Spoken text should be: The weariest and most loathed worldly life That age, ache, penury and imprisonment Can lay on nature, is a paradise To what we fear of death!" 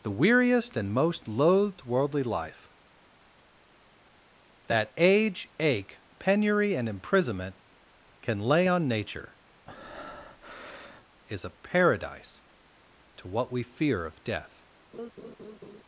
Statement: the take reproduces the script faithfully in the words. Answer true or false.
true